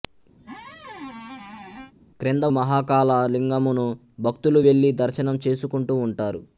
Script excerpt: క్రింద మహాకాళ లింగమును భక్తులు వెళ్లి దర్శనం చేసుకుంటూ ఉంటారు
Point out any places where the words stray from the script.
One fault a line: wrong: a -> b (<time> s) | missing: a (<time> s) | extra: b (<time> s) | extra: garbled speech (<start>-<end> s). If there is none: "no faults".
no faults